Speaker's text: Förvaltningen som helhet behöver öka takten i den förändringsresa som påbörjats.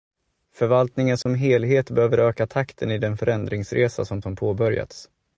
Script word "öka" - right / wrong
right